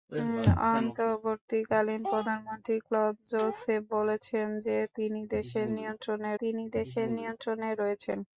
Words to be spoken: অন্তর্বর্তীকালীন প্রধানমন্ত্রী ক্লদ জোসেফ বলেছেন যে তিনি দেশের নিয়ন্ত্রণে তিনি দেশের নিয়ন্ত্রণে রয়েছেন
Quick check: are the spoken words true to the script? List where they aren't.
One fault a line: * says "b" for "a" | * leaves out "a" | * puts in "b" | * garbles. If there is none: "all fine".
all fine